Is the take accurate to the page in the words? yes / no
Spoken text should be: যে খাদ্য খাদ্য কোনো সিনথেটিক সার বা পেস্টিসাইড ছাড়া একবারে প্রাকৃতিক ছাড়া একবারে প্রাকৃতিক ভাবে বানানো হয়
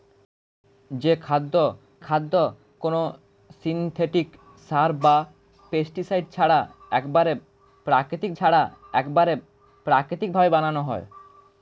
yes